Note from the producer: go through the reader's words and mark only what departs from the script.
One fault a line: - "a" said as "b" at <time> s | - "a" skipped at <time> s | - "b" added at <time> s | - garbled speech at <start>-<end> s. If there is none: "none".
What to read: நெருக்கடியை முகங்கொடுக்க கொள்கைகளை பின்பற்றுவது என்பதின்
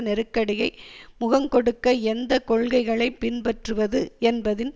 - "எந்த" added at 2.0 s